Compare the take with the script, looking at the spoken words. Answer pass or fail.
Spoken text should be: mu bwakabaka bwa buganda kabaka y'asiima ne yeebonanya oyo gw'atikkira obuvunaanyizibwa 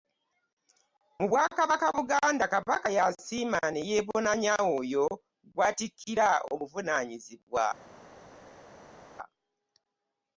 fail